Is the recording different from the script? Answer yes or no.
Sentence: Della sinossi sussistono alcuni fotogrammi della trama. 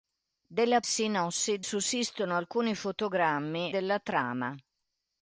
no